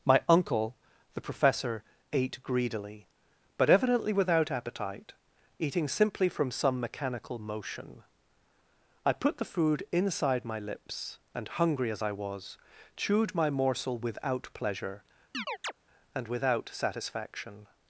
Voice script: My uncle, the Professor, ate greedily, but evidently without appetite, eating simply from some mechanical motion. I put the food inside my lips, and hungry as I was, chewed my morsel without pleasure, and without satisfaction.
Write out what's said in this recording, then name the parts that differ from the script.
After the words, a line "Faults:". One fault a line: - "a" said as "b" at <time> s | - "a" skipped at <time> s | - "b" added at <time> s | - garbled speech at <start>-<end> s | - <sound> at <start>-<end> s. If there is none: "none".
My uncle, the Professor, ate greedily, but evidently without appetite, eating simply from some mechanical motion. I put the food inside my lips, and hungry as I was, chewed my morsel without pleasure, and without satisfaction.
Faults:
- chirp at 15.3-15.7 s